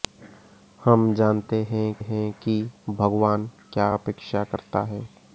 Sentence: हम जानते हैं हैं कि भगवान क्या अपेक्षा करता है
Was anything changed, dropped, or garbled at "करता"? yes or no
no